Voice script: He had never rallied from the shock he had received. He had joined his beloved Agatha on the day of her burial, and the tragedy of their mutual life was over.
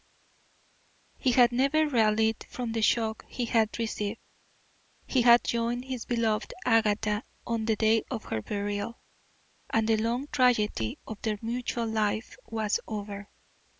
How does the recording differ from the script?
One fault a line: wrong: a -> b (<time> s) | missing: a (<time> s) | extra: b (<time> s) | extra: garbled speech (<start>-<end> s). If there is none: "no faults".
extra: long (10.0 s)